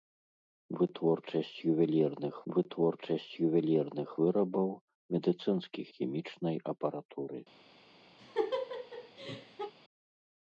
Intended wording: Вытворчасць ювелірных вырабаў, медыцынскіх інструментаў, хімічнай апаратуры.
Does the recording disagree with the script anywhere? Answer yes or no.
yes